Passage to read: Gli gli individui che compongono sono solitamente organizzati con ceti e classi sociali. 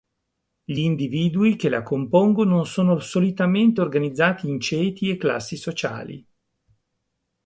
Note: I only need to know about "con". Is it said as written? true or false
false